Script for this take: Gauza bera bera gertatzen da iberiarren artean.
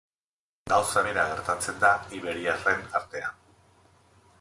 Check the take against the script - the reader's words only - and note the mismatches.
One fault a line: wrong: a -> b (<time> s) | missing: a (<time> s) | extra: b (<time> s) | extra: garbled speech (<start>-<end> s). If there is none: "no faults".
missing: bera (1.3 s)